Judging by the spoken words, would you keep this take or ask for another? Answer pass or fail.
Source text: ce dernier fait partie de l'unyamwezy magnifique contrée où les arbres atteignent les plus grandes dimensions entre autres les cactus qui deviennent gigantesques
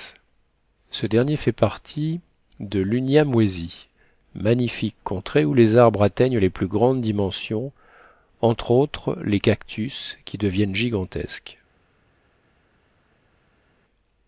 pass